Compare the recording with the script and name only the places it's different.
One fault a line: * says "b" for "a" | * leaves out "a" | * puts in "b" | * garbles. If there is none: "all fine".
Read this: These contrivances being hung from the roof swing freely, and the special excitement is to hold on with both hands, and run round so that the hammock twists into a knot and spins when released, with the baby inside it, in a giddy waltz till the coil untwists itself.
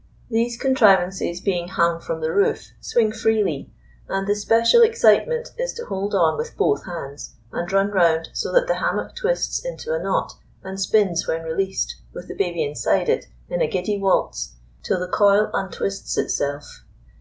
all fine